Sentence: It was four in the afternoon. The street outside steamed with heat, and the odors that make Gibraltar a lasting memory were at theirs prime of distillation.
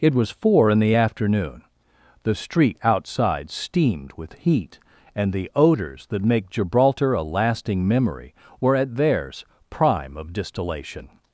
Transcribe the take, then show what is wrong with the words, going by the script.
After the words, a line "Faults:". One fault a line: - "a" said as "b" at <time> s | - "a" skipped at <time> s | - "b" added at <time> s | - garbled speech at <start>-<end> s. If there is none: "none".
It was four in the afternoon. The street outside steamed with heat, and the odors that make Gibraltar a lasting memory were at theirs prime of distillation.
Faults:
none